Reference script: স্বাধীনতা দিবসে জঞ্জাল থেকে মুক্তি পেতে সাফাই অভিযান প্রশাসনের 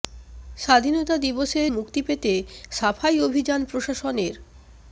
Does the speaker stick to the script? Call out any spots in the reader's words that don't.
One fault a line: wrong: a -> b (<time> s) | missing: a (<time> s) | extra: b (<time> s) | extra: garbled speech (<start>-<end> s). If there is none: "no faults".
missing: জঞ্জাল থেকে (1.6 s)